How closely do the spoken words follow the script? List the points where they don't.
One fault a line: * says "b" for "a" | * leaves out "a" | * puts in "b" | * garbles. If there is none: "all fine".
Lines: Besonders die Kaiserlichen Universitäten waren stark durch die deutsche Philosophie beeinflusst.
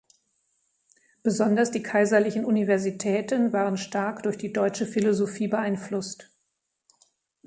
all fine